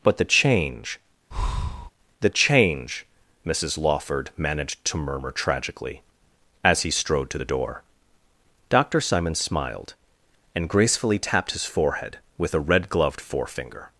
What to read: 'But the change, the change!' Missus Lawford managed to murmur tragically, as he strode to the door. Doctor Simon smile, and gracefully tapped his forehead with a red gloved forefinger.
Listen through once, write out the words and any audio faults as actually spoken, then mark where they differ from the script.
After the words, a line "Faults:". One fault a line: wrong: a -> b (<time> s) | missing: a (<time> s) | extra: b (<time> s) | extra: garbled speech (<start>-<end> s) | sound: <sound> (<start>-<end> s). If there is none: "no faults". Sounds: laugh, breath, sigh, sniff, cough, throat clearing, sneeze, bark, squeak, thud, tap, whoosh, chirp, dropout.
'But the change, the change!' Missus Lawford managed to murmur tragically, as he strode to the door. Doctor Simon smiled, and gracefully tapped his forehead with a red gloved forefinger.
Faults:
sound: breath (1.3-1.9 s)
wrong: smile -> smiled (9.4 s)